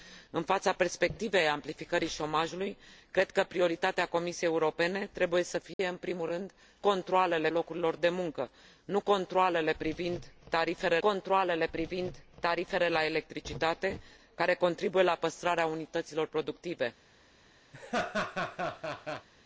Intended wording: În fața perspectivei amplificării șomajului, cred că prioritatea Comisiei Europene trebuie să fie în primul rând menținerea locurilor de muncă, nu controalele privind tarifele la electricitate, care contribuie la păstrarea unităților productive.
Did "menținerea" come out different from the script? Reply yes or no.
yes